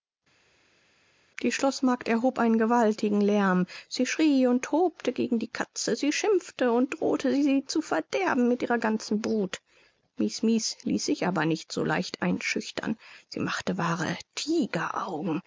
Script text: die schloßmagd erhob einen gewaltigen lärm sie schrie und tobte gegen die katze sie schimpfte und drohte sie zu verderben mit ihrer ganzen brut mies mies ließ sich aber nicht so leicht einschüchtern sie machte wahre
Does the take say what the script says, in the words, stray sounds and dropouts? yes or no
yes